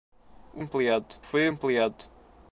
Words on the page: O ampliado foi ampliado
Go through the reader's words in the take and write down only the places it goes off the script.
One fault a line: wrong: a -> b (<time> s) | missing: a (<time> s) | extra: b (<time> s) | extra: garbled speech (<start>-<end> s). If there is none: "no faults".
no faults